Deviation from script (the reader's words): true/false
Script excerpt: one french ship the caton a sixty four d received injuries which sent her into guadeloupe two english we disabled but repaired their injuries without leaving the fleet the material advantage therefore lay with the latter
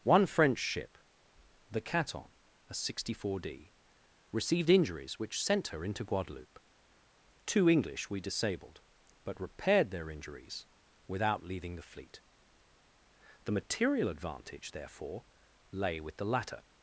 false